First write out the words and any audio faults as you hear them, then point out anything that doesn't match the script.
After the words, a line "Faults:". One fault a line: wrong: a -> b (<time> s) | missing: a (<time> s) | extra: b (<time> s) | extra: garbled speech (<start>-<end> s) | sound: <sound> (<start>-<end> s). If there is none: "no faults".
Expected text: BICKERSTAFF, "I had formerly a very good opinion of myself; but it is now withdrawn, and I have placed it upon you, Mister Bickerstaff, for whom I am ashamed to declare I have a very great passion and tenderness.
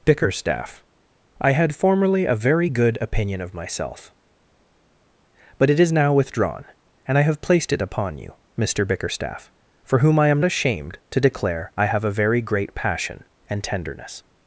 BICKERSTAFF, "I had formerly a very good opinion of myself; but it is now withdrawn, and I have placed it upon you, Mister Bickerstaff, for whom I am ashamed to declare I have a very great passion and tenderness.
Faults:
no faults